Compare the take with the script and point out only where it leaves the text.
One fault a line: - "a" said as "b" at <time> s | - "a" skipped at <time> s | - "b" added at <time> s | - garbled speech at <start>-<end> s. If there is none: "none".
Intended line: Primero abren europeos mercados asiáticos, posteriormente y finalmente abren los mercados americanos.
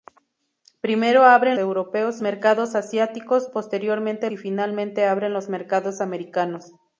none